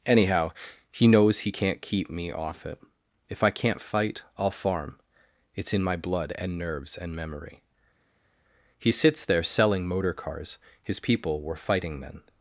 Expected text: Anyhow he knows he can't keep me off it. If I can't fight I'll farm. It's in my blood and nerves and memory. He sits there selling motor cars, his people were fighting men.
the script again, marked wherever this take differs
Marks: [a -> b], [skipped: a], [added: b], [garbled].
Anyhow he knows he can't keep me off it. If I can't fight I'll farm. It's in my blood and nerves and memory. He sits there selling motor cars, his people were fighting men.